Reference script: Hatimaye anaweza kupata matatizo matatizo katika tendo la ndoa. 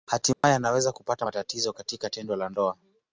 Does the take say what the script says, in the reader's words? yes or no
no